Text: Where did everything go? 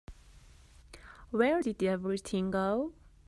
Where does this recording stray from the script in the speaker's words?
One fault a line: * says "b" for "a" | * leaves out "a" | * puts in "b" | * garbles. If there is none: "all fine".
all fine